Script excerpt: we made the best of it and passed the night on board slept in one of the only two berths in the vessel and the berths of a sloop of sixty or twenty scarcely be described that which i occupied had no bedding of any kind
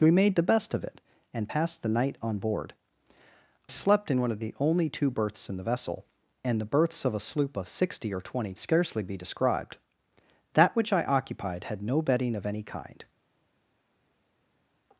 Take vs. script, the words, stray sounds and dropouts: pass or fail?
pass